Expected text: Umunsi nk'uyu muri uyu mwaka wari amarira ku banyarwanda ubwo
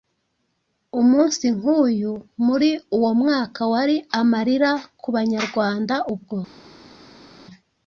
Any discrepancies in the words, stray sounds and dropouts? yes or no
yes